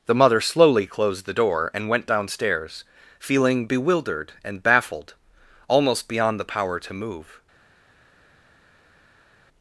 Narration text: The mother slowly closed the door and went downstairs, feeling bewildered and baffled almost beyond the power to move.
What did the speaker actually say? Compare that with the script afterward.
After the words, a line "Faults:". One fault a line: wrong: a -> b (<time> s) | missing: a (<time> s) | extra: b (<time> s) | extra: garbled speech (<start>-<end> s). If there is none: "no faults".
The mother slowly closed the door and went downstairs, feeling bewildered and baffled almost beyond the power to move.
Faults:
no faults